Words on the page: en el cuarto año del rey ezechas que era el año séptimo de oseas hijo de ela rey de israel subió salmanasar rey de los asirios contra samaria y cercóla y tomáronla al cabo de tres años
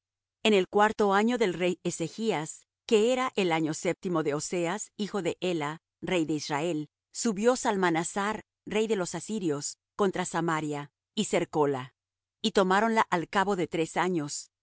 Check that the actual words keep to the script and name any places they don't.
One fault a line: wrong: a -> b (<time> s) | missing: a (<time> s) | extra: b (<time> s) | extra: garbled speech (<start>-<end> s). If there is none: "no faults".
no faults